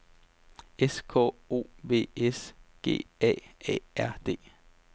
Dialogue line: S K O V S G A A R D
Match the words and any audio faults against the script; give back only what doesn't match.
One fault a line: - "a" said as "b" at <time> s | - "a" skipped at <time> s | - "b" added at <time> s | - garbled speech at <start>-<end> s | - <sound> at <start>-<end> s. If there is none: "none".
none